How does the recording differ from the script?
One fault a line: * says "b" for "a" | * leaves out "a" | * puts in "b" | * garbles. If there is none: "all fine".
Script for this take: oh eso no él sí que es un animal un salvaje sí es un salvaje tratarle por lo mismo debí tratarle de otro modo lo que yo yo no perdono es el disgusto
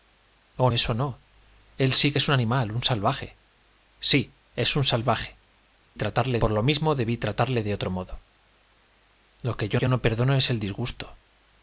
all fine